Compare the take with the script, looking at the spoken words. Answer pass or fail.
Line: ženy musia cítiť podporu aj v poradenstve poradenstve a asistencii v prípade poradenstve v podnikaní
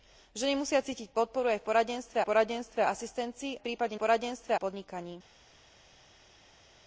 pass